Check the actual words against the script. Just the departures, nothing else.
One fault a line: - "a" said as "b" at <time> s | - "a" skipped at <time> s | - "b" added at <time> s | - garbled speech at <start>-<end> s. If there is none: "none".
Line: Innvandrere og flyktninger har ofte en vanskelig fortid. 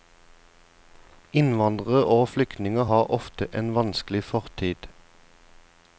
none